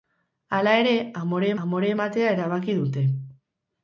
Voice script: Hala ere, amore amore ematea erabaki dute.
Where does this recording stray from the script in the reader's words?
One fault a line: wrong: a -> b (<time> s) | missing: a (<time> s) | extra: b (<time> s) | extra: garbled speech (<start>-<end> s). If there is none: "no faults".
no faults